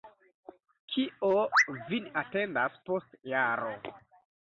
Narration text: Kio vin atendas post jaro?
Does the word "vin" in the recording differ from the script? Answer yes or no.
no